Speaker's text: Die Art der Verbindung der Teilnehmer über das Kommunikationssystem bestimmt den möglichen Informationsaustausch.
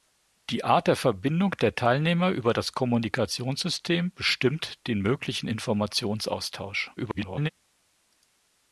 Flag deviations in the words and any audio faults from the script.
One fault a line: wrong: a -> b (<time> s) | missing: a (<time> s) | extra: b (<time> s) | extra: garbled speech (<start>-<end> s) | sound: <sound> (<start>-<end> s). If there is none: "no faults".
extra: garbled speech (7.0-7.5 s)